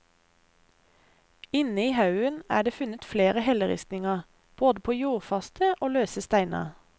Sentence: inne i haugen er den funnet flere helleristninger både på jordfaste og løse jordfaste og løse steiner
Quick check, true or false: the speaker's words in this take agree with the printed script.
false